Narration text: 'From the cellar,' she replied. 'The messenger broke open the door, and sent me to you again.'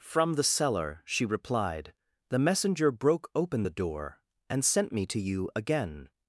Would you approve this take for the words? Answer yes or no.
yes